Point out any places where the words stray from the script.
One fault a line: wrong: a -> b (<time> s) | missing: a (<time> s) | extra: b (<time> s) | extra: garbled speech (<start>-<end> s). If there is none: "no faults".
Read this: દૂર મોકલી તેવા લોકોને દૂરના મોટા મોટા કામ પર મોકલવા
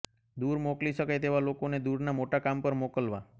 extra: શકાય (0.9 s)
missing: મોટા (2.4 s)